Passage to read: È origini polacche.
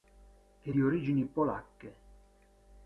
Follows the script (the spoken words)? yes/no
no